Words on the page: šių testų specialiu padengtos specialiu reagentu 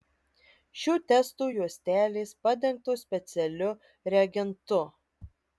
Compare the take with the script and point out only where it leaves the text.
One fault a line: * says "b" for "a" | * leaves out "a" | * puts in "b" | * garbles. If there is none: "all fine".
* says "juostelės" for "specialiu"